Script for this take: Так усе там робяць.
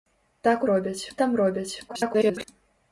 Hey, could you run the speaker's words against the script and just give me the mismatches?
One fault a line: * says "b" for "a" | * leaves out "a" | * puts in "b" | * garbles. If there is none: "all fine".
* says "робяць" for "усе"
* garbles